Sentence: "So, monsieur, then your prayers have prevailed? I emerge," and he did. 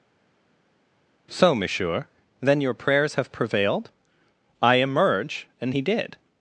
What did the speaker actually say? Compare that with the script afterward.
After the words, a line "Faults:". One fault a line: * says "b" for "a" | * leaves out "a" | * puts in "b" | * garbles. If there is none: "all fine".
"So, monsieur, then your prayers have prevailed? I emerge," and he did.
Faults:
all fine